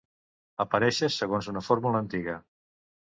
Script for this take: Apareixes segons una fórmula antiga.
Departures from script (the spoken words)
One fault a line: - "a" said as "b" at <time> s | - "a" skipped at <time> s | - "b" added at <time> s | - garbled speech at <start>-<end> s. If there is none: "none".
none